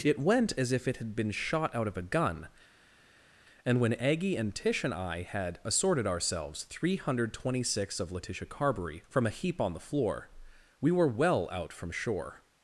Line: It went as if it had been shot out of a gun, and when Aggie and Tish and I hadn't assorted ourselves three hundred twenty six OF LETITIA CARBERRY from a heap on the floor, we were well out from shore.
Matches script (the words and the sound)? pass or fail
fail